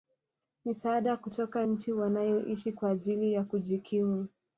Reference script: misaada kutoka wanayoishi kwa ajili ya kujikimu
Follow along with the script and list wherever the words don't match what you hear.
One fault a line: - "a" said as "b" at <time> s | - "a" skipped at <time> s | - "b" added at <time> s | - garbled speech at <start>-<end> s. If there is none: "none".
- "nchi" added at 1.7 s